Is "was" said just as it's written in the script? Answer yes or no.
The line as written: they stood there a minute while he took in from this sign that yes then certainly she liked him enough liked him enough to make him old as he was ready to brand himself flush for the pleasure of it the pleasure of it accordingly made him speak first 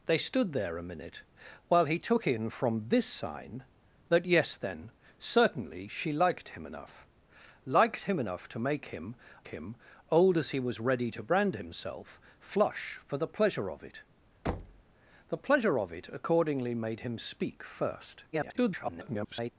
yes